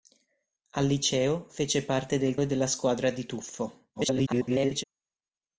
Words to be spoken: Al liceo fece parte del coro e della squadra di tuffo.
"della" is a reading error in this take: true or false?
false